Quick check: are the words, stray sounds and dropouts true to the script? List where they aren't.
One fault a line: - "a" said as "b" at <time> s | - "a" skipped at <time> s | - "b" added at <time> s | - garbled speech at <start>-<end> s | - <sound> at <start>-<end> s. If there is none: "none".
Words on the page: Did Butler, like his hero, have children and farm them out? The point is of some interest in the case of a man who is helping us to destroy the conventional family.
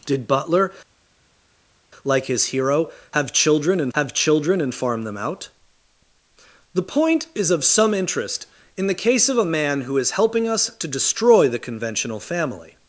- "have children and" added at 3.9 s